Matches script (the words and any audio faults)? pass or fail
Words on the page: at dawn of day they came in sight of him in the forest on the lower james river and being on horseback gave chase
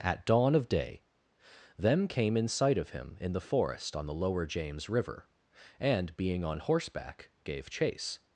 fail